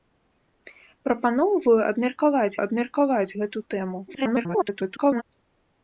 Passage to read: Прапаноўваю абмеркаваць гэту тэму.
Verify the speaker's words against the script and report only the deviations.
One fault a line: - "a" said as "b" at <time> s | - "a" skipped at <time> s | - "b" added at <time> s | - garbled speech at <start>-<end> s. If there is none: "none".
- "абмеркаваць" added at 2.6 s
- garbled speech at 4.1-5.2 s